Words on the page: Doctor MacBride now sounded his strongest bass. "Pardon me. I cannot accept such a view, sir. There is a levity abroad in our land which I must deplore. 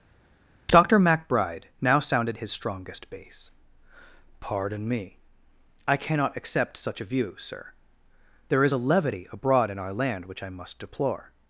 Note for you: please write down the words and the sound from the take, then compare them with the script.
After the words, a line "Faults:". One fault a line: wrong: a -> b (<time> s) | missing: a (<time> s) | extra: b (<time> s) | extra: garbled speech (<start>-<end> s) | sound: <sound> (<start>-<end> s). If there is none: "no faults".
Doctor MacBride now sounded his strongest bass. "Pardon me. I cannot accept such a view, sir. There is a levity abroad in our land which I must deplore.
Faults:
no faults